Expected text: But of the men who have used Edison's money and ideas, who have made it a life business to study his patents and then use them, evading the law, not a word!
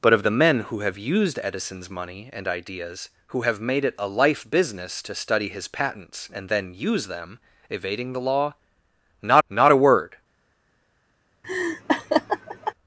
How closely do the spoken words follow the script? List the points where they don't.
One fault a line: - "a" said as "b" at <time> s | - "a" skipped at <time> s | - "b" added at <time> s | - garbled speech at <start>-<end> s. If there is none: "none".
- "not" added at 9.5 s